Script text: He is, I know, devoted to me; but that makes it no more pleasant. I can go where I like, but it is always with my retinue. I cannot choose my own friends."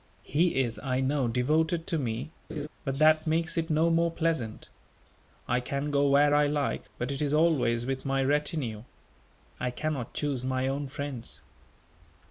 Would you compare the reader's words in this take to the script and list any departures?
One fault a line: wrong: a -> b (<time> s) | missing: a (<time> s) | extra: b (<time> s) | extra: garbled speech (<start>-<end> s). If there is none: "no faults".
no faults